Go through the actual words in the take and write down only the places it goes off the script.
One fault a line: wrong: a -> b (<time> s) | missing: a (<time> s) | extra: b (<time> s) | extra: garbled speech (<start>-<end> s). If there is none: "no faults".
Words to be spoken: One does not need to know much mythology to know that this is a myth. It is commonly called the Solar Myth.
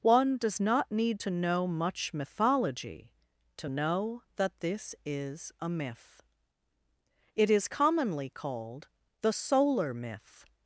no faults